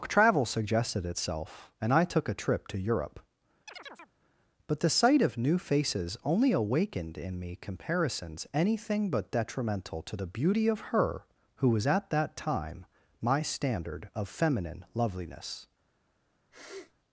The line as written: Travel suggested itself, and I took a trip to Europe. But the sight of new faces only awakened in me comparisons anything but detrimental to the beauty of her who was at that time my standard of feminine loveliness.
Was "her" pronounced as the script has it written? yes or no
yes